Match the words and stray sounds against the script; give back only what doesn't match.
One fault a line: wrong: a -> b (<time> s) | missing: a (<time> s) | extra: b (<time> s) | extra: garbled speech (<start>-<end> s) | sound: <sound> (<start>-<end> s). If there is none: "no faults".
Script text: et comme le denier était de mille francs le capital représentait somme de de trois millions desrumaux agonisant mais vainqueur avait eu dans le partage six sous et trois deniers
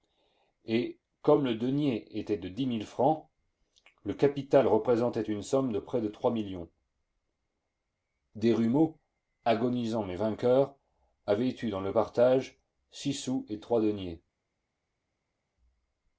extra: dix (2.5 s)
extra: une (5.2 s)
extra: près (5.8 s)